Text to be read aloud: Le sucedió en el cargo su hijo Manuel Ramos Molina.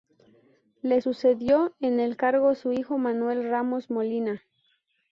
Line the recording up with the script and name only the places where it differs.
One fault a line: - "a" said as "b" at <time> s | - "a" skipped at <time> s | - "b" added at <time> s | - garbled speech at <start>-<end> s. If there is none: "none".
none